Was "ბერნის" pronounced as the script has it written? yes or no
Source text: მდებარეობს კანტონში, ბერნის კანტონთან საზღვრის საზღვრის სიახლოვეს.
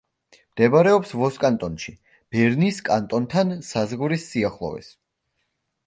yes